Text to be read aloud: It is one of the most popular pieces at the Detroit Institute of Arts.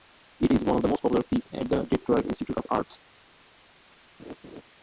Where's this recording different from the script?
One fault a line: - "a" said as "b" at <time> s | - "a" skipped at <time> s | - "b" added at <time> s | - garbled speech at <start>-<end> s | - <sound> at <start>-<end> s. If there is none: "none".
- laugh at 4.2-4.6 s